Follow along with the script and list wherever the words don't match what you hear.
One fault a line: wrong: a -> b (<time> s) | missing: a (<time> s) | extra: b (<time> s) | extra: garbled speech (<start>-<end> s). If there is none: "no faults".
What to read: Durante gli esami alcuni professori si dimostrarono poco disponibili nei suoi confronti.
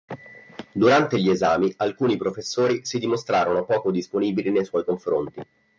no faults